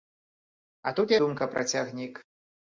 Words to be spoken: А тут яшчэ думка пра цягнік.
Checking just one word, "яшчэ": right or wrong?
wrong